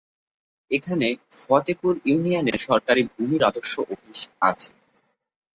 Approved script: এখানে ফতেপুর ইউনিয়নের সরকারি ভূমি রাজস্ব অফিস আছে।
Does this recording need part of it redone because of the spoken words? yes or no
no